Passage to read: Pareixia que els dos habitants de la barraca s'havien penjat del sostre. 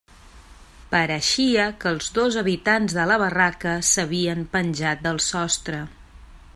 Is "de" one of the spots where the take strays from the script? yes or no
no